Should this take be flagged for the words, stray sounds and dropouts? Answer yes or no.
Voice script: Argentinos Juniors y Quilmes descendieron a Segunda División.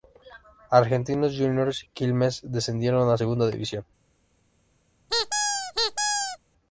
yes